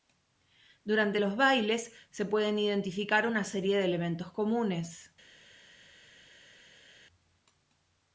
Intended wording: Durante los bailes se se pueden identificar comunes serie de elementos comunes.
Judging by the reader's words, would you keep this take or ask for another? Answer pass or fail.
fail